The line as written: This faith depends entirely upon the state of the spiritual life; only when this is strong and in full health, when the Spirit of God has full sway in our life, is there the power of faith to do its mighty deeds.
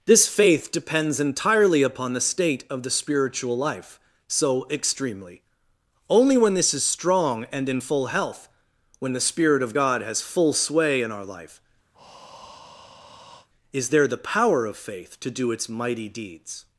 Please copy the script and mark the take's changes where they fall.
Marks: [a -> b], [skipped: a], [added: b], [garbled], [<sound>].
This faith depends entirely upon the state of the spiritual life; [added: so extremely] only when this is strong and in full health, when the Spirit of God has full sway in our life, [breath] is there the power of faith to do its mighty deeds.